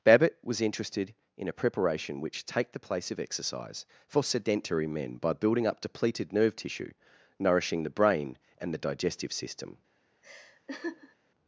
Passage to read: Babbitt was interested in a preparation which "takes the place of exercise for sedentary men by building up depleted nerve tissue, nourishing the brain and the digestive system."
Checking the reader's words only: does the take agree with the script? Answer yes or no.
no